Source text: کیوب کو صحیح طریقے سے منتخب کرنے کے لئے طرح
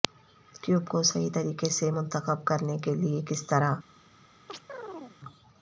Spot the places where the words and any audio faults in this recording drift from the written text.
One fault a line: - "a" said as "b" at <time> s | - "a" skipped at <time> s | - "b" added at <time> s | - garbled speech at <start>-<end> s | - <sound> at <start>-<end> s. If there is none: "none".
- "کس" added at 3.3 s
- chirp at 4.5-5.2 s